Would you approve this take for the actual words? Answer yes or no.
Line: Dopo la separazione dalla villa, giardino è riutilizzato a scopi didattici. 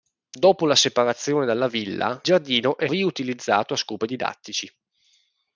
yes